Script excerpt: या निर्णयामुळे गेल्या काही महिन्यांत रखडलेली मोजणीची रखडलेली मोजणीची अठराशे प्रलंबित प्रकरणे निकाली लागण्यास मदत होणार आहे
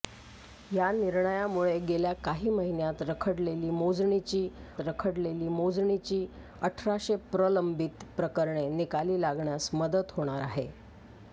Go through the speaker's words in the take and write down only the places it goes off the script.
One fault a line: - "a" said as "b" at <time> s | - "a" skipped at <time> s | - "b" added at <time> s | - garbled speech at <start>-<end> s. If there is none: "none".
none